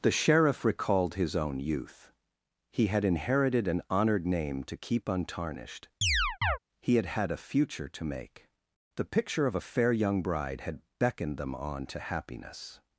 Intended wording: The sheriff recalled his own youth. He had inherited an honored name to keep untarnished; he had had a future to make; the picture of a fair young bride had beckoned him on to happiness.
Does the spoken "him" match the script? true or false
false